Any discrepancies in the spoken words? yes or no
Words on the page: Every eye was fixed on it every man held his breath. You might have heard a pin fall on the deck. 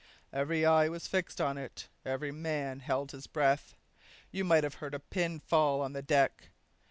no